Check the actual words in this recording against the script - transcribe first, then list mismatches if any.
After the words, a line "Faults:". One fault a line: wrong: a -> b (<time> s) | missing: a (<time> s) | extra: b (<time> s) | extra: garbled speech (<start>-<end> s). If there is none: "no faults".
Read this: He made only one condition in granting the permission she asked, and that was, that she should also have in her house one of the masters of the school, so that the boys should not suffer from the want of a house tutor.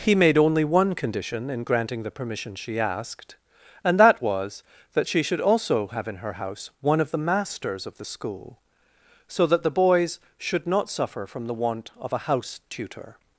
He made only one condition in granting the permission she asked, and that was, that she should also have in her house one of the masters of the school, so that the boys should not suffer from the want of a house tutor.
Faults:
no faults